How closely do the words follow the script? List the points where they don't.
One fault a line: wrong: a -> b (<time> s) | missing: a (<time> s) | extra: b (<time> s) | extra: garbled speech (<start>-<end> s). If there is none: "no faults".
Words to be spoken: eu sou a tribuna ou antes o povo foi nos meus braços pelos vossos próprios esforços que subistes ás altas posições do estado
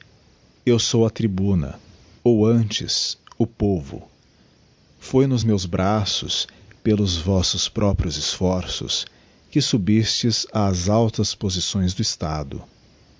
no faults